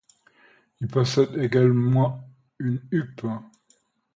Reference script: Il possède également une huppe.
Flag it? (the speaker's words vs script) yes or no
no